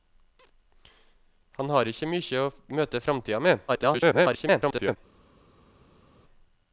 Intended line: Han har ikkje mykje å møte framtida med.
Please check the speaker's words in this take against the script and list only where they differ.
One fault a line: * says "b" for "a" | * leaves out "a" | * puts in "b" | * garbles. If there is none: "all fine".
* garbles